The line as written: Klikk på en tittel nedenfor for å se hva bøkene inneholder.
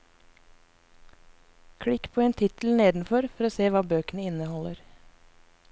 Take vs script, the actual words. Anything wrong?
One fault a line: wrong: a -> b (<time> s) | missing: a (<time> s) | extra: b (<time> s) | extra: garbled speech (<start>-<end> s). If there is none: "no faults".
no faults